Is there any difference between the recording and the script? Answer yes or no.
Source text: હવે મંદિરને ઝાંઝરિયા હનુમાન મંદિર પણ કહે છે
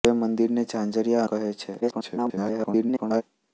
yes